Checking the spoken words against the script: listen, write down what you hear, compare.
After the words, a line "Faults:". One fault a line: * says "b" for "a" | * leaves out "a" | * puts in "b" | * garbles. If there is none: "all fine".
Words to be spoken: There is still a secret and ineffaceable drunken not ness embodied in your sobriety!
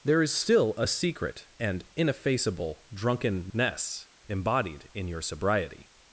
There is still a secret and ineffaceable drunken ness embodied in your sobriety!
Faults:
* leaves out "not"